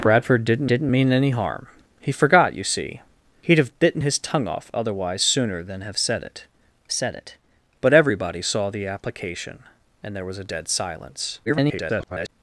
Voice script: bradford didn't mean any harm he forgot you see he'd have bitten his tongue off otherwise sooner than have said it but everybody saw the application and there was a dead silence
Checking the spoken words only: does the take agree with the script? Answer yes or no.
no